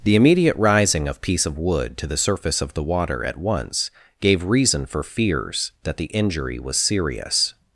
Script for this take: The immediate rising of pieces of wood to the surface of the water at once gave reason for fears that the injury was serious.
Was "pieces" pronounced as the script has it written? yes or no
no